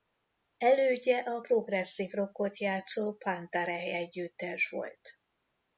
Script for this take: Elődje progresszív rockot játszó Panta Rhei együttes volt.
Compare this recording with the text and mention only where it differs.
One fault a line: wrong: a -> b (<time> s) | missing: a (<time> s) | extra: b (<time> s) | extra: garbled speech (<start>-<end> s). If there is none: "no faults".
extra: a (1.2 s)